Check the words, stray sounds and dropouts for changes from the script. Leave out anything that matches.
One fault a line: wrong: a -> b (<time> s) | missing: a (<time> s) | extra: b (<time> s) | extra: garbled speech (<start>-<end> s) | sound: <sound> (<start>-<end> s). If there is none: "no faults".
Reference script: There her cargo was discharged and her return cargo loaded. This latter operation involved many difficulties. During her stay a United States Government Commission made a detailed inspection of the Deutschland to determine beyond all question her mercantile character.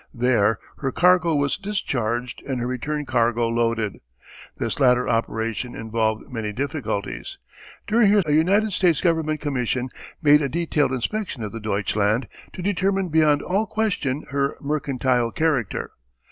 missing: stay (8.2 s)